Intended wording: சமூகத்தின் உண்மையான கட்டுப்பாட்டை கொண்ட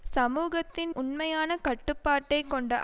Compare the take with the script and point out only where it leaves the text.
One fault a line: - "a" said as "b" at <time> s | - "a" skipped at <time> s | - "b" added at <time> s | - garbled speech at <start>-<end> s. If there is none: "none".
none